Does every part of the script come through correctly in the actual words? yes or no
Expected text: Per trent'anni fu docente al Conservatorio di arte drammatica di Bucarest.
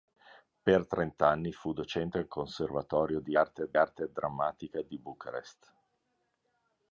no